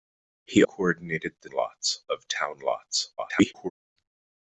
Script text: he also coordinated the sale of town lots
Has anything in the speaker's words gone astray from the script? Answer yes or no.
yes